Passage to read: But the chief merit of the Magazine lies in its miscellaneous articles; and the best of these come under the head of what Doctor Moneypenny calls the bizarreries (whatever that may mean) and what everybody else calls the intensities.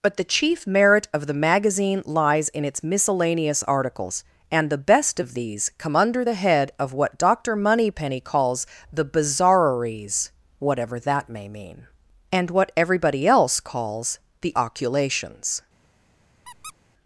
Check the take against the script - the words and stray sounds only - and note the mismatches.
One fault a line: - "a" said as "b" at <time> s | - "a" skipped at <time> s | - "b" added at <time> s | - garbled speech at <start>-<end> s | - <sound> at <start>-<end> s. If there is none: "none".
- "intensities" said as "oculations" at 14.6 s
- squeak at 16.4-16.7 s